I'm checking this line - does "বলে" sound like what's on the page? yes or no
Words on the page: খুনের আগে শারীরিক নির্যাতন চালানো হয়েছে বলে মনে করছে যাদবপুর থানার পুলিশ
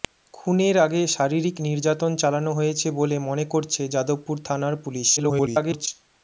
yes